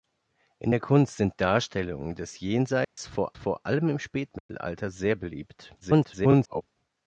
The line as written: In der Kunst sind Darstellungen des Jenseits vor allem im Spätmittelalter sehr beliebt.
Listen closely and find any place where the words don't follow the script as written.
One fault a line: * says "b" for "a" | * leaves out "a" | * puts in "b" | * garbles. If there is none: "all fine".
* puts in "vor"
* garbles